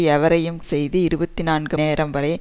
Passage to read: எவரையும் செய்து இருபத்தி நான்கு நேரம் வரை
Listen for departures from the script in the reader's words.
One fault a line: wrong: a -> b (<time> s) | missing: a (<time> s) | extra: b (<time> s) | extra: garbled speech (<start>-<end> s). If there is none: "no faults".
no faults